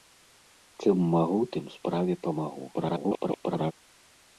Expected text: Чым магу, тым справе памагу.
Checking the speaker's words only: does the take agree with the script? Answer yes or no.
no